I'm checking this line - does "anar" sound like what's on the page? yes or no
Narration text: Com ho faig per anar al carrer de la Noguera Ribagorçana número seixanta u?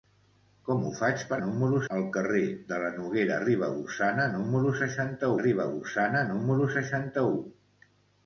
no